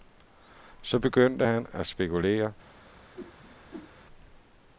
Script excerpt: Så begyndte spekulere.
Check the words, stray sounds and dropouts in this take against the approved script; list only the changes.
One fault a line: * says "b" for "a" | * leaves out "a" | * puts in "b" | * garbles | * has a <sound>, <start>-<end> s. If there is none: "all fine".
* puts in "han at"
* has a whoosh, 3.2-3.9 s